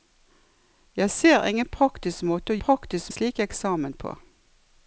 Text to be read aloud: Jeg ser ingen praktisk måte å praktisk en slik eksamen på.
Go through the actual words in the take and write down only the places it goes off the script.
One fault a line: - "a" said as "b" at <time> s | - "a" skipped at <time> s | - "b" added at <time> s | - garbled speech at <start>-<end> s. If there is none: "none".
none